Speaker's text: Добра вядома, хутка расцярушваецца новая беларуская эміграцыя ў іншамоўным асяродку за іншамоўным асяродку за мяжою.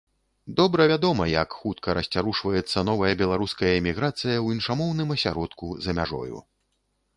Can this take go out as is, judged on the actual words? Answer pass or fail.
fail